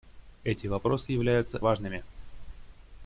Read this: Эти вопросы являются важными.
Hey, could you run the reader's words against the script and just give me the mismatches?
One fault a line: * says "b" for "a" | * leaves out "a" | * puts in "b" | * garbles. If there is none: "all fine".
all fine